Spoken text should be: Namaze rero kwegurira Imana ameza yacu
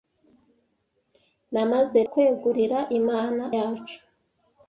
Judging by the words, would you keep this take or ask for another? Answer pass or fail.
fail